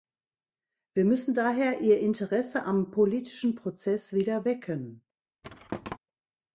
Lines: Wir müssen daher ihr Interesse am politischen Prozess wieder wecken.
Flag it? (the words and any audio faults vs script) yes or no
yes